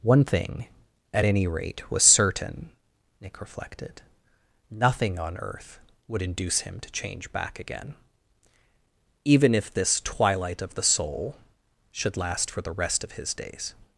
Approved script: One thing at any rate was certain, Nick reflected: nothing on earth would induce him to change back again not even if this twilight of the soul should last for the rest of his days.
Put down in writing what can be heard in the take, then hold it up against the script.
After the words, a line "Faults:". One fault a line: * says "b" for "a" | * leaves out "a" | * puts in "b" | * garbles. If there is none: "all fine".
One thing at any rate was certain, Nick reflected: nothing on earth would induce him to change back again even if this twilight of the soul should last for the rest of his days.
Faults:
* leaves out "not"